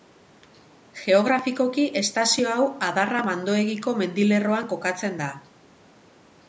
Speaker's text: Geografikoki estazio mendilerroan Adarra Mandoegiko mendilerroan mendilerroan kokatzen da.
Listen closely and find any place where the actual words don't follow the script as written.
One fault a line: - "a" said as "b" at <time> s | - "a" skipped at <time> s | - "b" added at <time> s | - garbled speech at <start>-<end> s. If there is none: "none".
- "mendilerroan" said as "hau" at 2.5 s
- "mendilerroan" skipped at 4.7 s